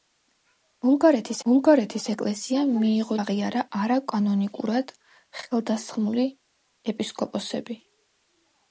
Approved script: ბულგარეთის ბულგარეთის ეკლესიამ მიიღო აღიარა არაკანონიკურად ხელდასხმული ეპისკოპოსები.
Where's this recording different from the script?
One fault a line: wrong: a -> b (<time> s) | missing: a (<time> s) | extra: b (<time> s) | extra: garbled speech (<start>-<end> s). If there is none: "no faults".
no faults